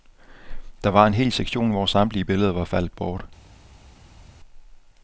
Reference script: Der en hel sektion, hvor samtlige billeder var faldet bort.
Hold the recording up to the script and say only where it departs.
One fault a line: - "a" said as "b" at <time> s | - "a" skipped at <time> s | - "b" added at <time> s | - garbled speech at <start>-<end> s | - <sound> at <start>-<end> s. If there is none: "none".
- "var" added at 0.9 s